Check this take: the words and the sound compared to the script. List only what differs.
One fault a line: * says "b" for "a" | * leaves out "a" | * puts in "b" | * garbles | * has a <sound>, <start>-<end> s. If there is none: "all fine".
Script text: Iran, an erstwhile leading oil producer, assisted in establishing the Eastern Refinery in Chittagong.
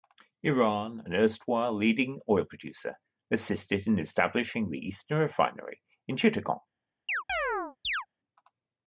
* has a chirp, 7.1-8.1 s